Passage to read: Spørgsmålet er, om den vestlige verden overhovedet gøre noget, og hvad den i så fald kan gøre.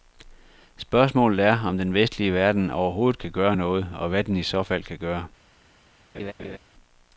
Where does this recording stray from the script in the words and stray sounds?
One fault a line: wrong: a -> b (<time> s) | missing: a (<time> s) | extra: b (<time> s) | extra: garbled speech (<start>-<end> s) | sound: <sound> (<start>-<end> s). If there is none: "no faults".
extra: kan (3.2 s)
sound: laugh (6.1-6.6 s)